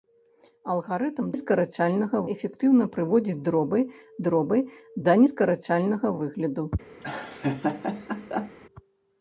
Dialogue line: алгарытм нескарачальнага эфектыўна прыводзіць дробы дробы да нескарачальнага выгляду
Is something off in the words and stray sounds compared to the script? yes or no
yes